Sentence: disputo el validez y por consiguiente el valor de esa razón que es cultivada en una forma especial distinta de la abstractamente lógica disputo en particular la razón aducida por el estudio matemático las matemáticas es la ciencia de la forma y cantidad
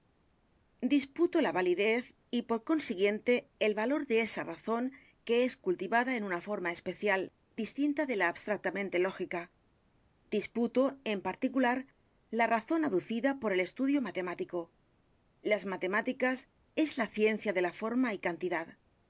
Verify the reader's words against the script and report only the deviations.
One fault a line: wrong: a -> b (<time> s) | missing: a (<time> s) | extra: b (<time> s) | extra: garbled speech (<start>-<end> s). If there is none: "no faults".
wrong: el -> la (1.4 s)